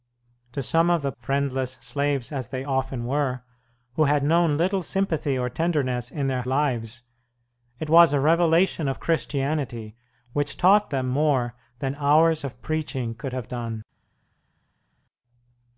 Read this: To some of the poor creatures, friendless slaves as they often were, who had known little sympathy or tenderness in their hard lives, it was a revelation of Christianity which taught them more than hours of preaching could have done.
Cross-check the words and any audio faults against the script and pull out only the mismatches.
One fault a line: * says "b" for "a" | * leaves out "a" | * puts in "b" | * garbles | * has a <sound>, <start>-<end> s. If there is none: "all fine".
* leaves out "poor creatures"
* leaves out "hard"